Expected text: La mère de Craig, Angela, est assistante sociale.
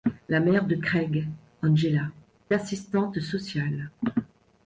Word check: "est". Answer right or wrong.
wrong